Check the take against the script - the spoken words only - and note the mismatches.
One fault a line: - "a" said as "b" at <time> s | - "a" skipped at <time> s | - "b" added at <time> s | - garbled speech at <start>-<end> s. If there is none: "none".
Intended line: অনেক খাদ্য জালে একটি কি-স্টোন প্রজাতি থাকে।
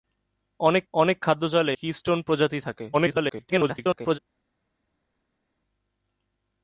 - "অনেক" added at 0.9 s
- "একটি" skipped at 1.7 s
- garbled speech at 2.9-4.2 s